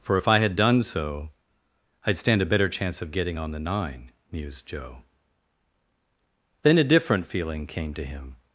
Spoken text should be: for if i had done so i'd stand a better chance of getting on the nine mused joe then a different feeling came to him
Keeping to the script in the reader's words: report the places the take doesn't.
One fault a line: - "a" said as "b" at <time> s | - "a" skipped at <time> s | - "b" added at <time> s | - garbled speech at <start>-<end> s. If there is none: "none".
none